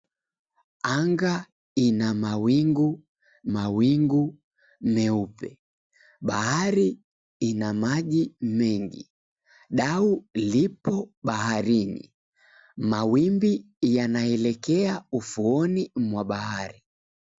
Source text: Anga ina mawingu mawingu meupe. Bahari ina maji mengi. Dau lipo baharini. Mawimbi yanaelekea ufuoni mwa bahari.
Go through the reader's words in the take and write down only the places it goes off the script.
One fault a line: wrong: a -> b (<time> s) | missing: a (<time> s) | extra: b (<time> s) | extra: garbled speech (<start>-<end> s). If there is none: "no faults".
no faults